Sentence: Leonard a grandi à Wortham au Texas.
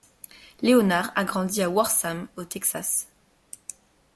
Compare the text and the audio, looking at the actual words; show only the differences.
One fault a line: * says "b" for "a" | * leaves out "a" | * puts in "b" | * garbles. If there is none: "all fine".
all fine